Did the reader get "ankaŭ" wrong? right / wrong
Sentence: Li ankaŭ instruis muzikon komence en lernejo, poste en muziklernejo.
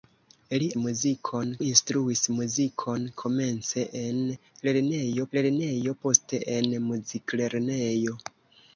wrong